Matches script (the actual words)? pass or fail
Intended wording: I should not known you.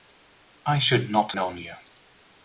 pass